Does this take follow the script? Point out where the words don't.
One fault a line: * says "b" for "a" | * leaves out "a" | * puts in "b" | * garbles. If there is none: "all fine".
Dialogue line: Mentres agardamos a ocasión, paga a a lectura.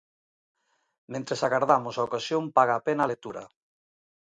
* puts in "pena"